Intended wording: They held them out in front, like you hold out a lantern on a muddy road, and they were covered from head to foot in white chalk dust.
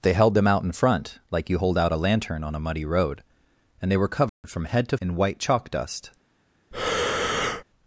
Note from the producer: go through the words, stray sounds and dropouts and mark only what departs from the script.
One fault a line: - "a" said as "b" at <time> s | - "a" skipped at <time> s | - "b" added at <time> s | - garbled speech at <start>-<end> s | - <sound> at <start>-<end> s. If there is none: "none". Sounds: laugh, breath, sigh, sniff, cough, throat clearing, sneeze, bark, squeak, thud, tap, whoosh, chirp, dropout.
- dropout at 4.3-4.4 s
- "foot" skipped at 5.0 s
- breath at 6.7-7.6 s